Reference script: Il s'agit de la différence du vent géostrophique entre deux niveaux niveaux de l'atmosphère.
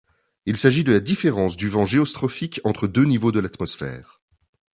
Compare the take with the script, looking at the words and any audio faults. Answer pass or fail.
fail